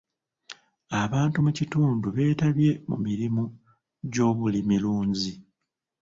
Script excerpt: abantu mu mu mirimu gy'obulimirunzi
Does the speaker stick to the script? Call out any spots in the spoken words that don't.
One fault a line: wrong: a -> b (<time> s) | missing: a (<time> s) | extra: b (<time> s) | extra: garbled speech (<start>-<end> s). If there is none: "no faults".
extra: kitundu beetabye (1.6 s)